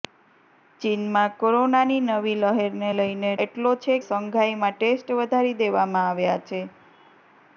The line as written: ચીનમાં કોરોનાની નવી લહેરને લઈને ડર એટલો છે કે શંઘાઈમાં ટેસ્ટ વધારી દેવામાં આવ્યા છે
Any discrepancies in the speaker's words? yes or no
yes